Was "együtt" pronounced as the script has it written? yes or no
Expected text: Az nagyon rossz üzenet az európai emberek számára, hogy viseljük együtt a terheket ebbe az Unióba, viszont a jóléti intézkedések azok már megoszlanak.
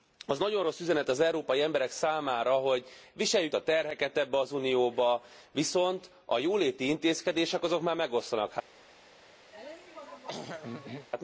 no